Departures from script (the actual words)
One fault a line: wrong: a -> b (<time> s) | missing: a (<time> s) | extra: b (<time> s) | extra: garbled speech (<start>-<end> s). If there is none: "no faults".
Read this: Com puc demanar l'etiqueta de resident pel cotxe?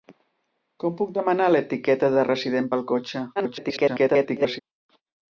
extra: garbled speech (3.4-4.6 s)